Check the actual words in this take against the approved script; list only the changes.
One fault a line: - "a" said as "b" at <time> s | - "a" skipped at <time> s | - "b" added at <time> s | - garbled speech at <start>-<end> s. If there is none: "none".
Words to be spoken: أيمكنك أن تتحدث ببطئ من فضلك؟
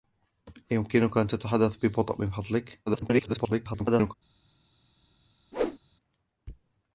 - garbled speech at 2.9-4.1 s